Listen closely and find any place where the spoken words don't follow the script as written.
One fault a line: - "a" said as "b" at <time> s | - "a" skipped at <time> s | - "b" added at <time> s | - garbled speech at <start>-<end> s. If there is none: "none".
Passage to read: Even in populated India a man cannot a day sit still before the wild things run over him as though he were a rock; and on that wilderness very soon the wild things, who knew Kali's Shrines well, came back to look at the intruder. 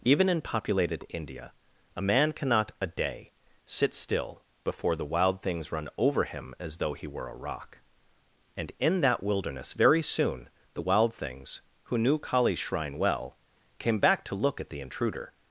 - "on" said as "in" at 8.8 s
- "Shrines" said as "Shrine" at 12.6 s